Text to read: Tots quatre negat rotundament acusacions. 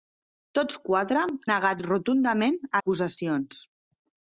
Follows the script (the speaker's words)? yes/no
yes